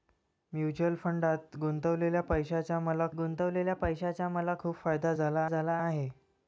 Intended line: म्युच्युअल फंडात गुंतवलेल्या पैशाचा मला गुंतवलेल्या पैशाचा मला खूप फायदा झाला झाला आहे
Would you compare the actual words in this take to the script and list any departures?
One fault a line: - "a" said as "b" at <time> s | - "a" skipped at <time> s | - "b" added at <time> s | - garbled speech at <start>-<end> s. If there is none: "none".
none